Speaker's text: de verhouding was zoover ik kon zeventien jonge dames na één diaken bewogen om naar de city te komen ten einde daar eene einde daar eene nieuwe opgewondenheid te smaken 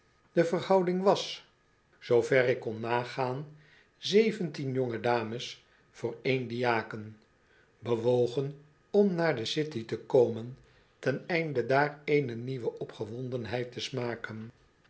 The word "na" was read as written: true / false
false